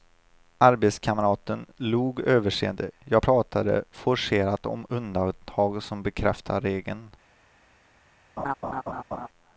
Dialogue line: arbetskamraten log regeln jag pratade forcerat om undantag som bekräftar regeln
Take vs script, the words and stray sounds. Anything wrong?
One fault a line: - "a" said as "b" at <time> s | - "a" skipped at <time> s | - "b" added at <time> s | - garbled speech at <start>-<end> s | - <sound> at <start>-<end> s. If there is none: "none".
- "regeln" said as "överseende" at 2.2 s
- laugh at 8.4-9.3 s